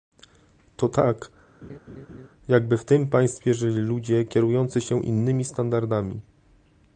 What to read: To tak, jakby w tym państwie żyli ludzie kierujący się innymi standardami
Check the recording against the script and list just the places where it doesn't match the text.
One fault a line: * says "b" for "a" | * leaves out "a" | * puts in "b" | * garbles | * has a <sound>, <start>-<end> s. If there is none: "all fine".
* has a laugh, 1.6-2.3 s